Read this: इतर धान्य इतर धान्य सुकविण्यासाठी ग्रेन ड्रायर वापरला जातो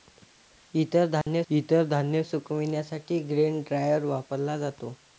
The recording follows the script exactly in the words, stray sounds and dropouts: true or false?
false